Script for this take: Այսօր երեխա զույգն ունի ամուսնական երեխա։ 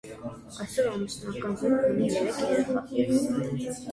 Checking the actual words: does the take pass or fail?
fail